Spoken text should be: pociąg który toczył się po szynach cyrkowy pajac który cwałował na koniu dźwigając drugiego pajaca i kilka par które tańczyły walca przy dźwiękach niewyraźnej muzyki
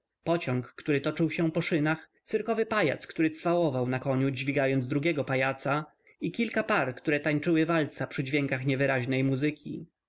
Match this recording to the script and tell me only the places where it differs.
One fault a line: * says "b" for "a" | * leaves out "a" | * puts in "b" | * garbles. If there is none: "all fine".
all fine